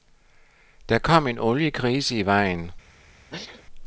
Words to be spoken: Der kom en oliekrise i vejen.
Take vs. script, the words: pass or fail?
pass